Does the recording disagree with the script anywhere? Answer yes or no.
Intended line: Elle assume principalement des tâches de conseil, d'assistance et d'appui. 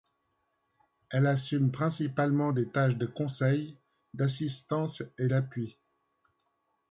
no